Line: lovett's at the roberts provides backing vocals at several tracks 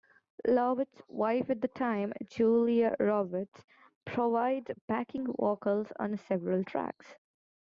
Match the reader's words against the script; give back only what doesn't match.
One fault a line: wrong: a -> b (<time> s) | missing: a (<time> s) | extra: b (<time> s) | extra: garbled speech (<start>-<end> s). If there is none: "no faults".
extra: wife (1.1 s)
extra: time julia (1.7 s)
wrong: at -> on (6.0 s)